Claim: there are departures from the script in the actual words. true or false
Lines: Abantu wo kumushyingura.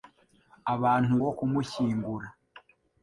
false